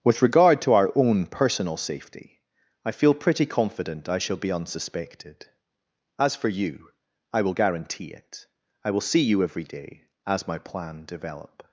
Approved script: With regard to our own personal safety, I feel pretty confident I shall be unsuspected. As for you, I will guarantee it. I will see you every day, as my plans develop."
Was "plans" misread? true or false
true